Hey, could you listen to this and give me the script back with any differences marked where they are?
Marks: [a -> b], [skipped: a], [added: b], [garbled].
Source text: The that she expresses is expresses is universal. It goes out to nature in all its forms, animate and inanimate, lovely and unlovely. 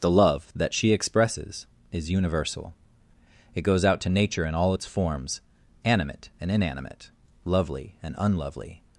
The [added: love] that she expresses is [skipped: expresses is] universal. It goes out to nature in all its forms, animate and inanimate, lovely and unlovely.